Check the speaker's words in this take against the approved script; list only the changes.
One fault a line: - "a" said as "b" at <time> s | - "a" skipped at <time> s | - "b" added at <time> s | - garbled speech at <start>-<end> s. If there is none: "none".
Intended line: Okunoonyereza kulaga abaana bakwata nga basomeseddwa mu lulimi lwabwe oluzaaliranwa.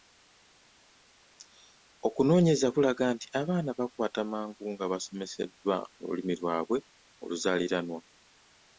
- "nti" added at 3.1 s
- "mangu" added at 4.3 s